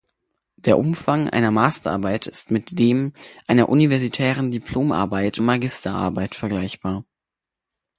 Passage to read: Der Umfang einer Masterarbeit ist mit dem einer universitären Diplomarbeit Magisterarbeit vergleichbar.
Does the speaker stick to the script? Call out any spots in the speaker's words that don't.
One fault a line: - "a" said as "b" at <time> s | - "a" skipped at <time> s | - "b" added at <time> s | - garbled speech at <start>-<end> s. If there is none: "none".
none